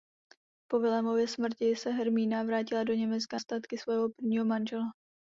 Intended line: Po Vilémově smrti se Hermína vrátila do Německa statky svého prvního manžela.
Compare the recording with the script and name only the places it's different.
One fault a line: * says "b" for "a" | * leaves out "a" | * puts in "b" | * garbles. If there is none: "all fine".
all fine